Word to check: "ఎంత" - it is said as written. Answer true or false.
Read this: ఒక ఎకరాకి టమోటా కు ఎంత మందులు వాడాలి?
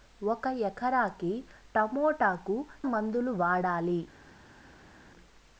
false